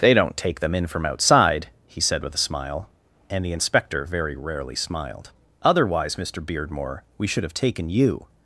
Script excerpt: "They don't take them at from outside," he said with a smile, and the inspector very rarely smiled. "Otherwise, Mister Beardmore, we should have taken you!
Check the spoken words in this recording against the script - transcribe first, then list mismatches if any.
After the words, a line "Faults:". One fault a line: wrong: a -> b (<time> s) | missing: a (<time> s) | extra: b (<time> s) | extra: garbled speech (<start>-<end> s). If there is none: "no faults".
"They don't take them in from outside," he said with a smile, and the inspector very rarely smiled. "Otherwise, Mister Beardmore, we should have taken you!
Faults:
wrong: at -> in (0.7 s)